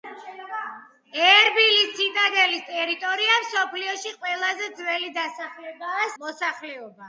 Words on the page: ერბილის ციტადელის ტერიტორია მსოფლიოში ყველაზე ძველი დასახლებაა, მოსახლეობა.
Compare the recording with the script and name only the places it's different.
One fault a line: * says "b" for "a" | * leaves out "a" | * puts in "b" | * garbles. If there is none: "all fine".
all fine